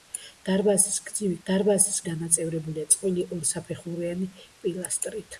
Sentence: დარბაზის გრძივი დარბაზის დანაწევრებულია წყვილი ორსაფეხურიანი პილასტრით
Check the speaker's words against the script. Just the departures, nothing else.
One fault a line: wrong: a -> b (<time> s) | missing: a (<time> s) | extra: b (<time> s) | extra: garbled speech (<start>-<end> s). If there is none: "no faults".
no faults